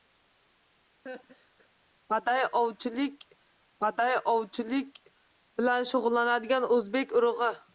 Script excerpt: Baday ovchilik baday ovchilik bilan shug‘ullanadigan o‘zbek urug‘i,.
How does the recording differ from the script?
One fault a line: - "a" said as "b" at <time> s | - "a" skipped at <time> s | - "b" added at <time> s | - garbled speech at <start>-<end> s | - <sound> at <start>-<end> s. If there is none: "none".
- laugh at 1.1-1.7 s